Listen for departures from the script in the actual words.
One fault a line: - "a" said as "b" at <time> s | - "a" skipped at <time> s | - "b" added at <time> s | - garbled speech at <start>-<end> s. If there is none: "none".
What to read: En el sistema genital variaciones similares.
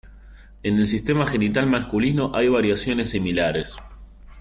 - "masculino hay" added at 1.7 s